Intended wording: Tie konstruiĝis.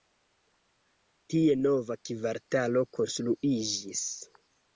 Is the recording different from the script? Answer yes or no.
yes